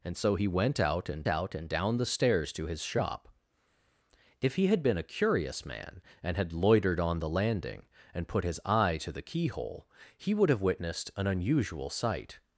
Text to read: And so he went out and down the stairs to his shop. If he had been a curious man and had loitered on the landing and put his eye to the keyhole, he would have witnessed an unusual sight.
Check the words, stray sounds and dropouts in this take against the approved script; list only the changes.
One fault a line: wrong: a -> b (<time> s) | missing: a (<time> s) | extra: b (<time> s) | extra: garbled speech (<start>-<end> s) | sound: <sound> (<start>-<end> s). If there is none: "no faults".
extra: out and (1.3 s)